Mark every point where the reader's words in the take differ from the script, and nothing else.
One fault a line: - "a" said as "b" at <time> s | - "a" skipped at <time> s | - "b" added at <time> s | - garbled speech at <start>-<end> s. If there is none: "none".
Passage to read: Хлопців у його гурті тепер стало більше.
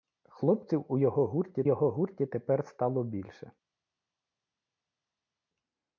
- "його гурті" added at 1.6 s